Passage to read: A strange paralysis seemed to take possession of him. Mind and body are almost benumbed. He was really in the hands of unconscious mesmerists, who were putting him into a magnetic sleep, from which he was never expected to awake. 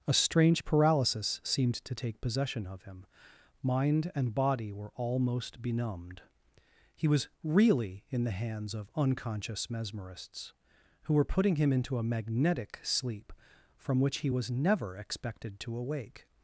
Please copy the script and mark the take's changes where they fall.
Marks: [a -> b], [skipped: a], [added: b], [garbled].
A strange paralysis seemed to take possession of him. Mind and body [are -> were] almost benumbed. He was really in the hands of unconscious mesmerists, who were putting him into a magnetic sleep, from which he was never expected to awake.